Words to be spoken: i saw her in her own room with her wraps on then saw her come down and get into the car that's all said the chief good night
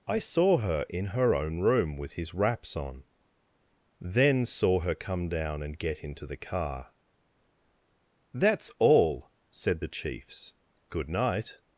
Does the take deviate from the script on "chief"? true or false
true